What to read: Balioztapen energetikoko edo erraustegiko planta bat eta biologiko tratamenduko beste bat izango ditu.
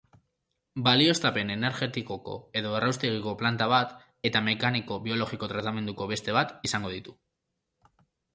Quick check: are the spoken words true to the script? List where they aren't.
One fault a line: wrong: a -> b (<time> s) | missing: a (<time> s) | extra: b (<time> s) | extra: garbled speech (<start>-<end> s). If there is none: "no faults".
extra: mekaniko (4.5 s)